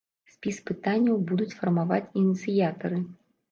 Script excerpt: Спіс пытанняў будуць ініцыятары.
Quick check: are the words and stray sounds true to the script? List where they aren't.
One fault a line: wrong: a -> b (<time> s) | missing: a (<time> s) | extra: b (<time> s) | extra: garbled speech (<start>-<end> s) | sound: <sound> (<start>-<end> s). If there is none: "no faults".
extra: фармаваць (1.6 s)